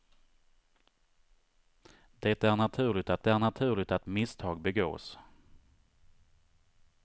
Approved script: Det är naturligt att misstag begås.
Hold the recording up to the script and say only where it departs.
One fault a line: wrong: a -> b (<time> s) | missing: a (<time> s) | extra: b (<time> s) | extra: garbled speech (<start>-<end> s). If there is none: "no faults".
extra: är naturligt att (3.3 s)